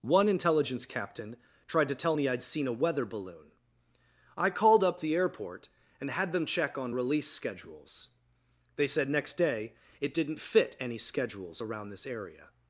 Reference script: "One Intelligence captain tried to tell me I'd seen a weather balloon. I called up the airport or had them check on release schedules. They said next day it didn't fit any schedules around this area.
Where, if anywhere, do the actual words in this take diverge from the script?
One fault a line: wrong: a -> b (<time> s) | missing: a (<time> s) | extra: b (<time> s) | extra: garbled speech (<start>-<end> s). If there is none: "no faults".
wrong: or -> and (6.0 s)